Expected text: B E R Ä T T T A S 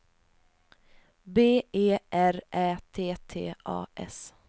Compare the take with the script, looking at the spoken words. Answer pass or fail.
fail